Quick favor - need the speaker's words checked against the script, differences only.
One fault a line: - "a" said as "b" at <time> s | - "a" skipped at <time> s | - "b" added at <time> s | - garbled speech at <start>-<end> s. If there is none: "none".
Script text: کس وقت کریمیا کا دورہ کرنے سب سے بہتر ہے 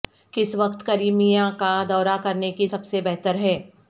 - "کی" added at 2.5 s